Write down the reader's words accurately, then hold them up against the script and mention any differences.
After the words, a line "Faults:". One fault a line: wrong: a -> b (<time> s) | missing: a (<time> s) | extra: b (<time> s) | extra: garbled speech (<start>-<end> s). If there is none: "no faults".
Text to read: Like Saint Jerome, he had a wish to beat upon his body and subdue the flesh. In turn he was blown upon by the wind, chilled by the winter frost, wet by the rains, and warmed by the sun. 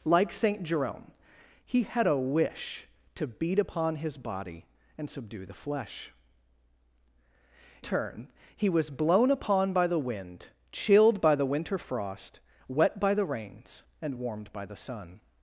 Like Saint Jerome, he had a wish to beat upon his body and subdue the flesh. Turn he was blown upon by the wind, chilled by the winter frost, wet by the rains, and warmed by the sun.
Faults:
missing: In (6.1 s)